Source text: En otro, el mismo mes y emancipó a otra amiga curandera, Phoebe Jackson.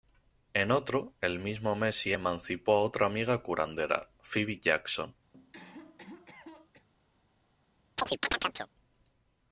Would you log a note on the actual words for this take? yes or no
no